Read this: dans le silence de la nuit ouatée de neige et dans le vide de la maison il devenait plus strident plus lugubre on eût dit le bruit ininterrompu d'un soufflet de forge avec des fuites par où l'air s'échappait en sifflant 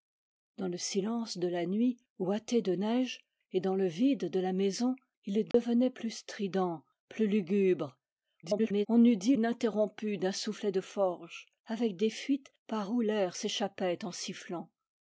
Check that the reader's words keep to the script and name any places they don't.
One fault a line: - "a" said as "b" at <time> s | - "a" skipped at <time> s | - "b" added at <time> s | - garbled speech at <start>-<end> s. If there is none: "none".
- garbled speech at 8.4-8.9 s
- "le bruit" skipped at 9.4 s